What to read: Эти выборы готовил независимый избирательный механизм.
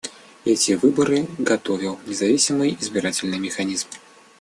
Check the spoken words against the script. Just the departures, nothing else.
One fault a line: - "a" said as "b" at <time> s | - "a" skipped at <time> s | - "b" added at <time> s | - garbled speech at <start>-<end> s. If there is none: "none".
none